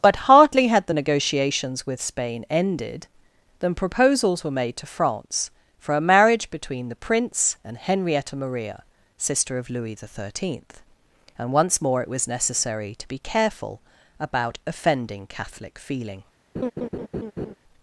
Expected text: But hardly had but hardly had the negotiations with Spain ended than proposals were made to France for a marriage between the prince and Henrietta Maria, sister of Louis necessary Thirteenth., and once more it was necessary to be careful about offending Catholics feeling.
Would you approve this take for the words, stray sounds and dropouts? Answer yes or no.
no